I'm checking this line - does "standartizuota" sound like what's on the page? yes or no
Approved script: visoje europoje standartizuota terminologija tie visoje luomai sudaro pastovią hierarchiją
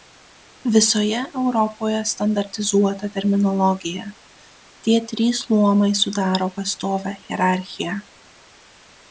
yes